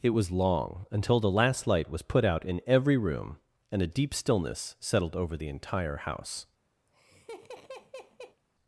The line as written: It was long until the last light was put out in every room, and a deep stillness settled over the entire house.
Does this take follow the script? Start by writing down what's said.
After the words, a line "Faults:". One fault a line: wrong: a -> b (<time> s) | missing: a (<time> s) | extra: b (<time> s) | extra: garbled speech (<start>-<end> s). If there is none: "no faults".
It was long until the last light was put out in every room, and a deep stillness settled over the entire house.
Faults:
no faults